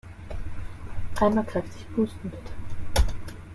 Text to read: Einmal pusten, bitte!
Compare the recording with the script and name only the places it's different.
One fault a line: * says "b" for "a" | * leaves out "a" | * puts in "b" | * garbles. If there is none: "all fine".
* puts in "kräftig"